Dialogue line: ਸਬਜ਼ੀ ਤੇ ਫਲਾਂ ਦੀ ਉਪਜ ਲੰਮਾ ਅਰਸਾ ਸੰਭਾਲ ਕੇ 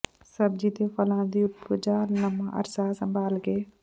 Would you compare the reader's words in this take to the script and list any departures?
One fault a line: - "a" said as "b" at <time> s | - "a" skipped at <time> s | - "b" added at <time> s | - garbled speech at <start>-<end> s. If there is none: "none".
none